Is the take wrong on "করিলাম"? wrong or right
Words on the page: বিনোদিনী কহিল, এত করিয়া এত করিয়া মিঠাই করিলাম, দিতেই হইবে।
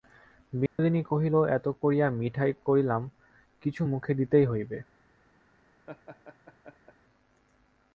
wrong